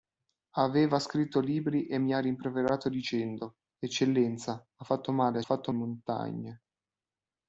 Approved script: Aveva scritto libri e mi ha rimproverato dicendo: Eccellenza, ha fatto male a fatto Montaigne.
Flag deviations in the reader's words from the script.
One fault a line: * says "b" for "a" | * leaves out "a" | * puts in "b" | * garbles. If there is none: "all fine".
all fine